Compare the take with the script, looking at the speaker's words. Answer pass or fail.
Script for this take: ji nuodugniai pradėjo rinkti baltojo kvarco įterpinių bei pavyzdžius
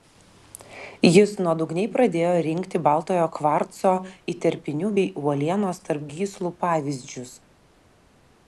fail